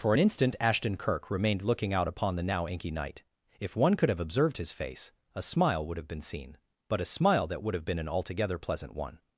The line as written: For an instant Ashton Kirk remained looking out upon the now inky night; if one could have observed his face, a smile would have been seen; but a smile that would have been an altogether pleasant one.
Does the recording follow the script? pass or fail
pass